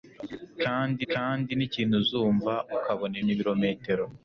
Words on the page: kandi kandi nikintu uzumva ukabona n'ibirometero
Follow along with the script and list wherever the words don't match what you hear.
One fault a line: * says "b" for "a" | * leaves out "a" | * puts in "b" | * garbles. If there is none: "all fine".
all fine